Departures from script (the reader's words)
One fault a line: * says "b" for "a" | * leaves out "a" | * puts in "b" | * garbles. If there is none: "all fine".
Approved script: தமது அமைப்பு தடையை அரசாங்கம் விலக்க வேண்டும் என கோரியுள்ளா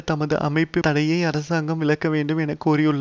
all fine